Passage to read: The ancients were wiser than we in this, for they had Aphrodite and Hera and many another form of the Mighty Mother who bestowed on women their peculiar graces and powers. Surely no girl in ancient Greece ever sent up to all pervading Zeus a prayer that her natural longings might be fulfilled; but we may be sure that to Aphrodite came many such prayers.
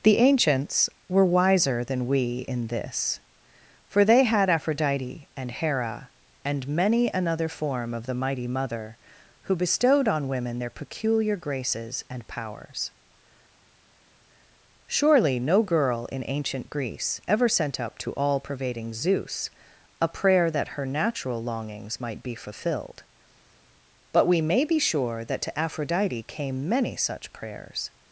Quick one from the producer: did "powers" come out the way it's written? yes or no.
yes